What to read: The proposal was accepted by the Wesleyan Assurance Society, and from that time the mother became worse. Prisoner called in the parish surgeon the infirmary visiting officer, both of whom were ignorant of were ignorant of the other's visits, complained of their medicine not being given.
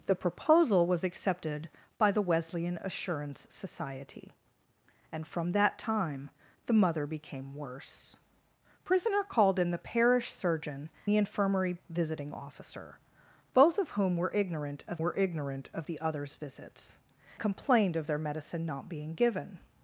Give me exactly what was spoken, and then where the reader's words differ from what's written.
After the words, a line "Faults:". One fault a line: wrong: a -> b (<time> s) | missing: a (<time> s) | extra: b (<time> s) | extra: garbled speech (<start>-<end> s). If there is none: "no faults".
The proposal was accepted by the Wesleyan Assurance Society, and from that time the mother became worse. Prisoner called in the parish surgeon the infirmary visiting officer, both of whom were ignorant of were ignorant of the other's visits, complained of their medicine not being given.
Faults:
no faults